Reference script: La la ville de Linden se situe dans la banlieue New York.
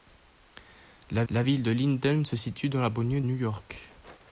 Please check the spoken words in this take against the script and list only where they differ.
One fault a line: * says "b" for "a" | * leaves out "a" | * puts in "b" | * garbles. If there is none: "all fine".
all fine